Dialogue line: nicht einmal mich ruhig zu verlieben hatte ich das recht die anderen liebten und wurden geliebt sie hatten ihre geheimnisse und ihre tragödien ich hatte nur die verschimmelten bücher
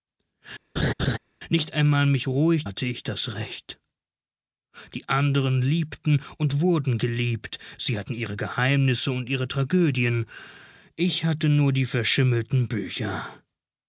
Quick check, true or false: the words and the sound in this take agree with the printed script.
false